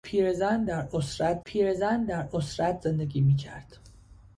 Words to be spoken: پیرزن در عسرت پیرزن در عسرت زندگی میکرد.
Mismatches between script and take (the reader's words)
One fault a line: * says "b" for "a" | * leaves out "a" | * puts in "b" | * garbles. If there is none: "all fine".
all fine